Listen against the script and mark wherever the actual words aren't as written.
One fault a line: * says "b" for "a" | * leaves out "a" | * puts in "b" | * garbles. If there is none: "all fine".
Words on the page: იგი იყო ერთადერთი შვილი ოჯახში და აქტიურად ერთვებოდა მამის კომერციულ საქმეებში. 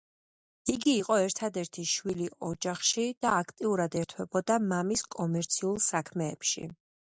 all fine